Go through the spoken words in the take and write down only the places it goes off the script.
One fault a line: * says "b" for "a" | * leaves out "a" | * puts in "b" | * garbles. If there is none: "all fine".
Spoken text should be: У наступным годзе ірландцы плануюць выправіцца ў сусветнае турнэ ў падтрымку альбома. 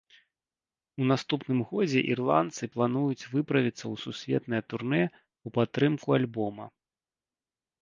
all fine